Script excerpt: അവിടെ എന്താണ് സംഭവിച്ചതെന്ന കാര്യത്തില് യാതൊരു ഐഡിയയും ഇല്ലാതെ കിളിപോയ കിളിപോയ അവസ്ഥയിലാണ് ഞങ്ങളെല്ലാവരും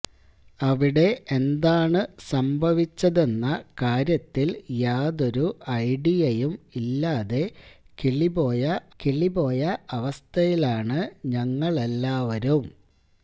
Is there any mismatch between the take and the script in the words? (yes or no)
no